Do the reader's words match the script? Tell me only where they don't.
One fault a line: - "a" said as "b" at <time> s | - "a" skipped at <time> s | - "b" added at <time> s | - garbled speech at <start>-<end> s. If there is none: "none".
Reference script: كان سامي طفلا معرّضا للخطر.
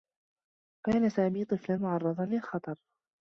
none